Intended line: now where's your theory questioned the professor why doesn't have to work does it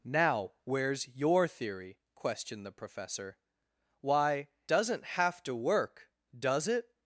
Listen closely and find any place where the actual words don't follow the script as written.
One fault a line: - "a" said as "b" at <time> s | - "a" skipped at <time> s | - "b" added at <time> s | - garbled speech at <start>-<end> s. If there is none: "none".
none